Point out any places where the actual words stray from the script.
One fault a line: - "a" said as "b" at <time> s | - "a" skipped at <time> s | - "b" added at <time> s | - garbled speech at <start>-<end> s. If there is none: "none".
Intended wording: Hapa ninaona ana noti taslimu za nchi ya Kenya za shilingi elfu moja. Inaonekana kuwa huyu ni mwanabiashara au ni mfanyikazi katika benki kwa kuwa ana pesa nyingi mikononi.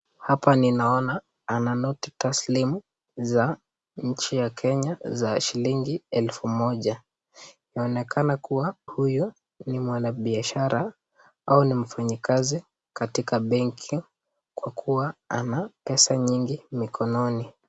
none